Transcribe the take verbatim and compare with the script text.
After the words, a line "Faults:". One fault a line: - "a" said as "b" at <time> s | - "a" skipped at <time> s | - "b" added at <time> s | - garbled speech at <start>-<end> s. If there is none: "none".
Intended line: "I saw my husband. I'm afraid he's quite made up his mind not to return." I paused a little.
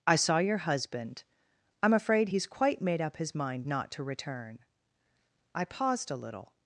"I saw your husband. I'm afraid he's quite made up his mind not to return." I paused a little.
Faults:
- "my" said as "your" at 0.4 s